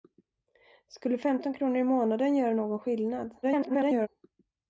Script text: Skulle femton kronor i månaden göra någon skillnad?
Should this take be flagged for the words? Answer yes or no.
yes